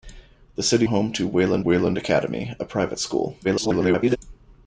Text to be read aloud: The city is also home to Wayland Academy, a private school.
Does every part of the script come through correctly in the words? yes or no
no